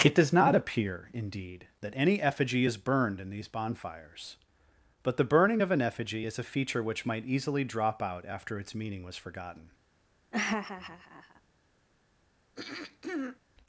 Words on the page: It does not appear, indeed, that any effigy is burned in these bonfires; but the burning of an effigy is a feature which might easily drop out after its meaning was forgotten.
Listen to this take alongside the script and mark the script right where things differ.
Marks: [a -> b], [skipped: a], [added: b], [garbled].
It does not appear, indeed, that any effigy is burned in these bonfires; but the burning of an effigy is a feature which might easily drop out after its meaning was forgotten.